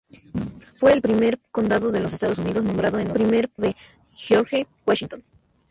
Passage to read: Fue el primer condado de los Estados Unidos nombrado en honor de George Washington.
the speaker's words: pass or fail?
fail